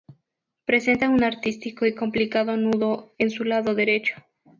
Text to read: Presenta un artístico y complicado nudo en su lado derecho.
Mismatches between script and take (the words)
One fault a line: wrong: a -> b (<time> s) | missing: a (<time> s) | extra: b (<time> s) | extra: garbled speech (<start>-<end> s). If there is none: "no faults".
no faults